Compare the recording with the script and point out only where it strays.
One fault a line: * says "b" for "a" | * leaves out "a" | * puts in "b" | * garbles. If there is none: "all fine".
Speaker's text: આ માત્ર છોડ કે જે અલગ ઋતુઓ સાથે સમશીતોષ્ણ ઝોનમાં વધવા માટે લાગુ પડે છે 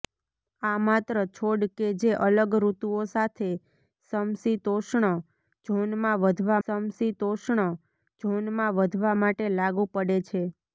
* puts in "સમશીતોષ્ણ ઝોનમાં વધવા"